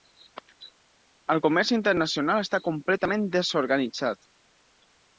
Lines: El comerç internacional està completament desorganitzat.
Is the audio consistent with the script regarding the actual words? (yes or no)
yes